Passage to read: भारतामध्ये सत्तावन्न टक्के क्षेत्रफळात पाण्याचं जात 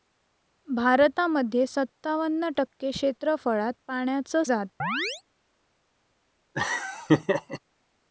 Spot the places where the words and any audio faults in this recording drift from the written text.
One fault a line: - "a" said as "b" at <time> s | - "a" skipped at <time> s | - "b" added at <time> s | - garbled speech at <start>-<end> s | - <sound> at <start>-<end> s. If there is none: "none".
- chirp at 4.8-5.2 s
- laugh at 6.5-7.6 s